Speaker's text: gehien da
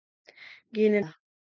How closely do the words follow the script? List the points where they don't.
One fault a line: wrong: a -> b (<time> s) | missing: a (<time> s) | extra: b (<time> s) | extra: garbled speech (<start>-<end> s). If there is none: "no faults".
no faults